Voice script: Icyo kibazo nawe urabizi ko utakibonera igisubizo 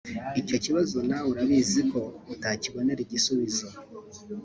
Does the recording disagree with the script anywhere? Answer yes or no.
no